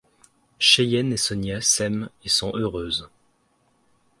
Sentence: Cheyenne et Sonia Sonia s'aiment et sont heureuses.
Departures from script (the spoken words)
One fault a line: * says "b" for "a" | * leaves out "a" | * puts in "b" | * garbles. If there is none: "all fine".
* leaves out "Sonia"